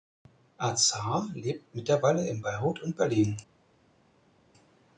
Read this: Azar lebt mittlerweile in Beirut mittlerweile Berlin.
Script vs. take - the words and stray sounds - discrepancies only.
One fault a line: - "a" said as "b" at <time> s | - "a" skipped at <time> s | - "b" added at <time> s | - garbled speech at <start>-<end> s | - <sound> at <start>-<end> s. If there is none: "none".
- "mittlerweile" said as "und" at 2.8 s